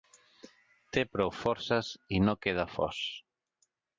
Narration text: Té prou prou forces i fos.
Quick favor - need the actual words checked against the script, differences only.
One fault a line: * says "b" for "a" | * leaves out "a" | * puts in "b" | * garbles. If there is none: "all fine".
* leaves out "prou"
* puts in "no queda"